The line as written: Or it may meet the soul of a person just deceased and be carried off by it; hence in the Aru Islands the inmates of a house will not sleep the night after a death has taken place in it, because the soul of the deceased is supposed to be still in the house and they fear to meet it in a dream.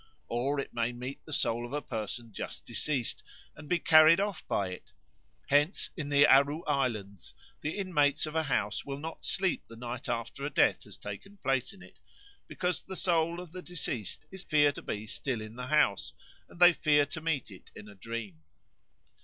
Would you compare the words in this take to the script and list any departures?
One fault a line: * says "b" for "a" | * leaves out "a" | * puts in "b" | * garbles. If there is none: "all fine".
* says "fear" for "supposed"